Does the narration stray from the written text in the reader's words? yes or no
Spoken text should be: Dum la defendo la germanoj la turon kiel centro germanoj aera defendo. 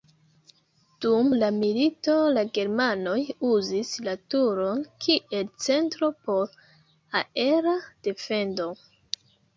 yes